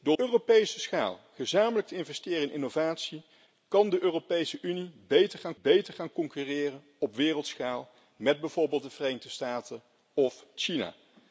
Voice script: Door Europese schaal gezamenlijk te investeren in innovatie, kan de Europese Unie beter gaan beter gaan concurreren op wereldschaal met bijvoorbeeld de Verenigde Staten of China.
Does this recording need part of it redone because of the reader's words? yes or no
no